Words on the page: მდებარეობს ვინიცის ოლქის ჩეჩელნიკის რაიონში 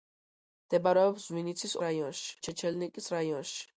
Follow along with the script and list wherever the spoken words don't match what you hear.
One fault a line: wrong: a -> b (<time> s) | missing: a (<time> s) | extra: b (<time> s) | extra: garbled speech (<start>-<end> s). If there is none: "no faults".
wrong: ოლქის -> რაიონში (1.9 s)